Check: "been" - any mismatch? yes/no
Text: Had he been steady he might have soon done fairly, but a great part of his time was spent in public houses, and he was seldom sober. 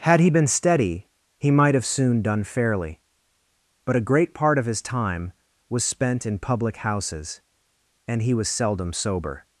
no